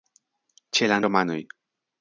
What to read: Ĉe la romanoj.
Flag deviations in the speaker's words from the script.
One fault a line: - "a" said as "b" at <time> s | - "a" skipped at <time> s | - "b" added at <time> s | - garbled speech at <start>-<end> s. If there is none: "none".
none